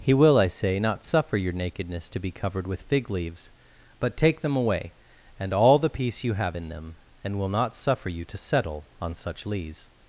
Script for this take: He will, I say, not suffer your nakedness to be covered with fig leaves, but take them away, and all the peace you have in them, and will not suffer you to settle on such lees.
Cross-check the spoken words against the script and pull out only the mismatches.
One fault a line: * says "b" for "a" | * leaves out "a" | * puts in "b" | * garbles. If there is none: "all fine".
all fine